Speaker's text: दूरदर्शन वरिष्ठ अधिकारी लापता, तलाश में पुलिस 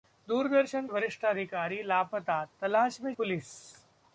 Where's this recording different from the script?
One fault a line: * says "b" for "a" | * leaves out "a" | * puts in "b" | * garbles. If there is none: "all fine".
all fine